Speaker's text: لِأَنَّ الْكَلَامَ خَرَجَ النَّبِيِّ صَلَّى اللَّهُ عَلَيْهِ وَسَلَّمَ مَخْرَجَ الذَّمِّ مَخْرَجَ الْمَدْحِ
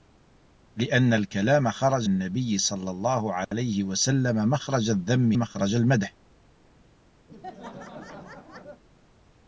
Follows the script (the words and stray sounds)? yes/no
no